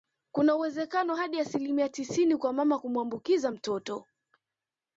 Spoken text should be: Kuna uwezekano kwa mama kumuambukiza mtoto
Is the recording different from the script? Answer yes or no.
yes